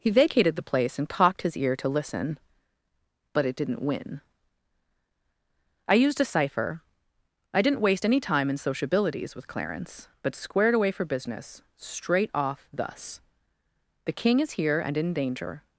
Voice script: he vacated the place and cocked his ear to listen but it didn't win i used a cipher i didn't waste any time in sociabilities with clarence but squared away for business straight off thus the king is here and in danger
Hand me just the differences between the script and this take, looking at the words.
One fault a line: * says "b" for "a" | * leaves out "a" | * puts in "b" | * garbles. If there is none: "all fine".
all fine